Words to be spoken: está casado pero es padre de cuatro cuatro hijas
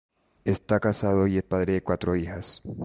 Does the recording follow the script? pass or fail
fail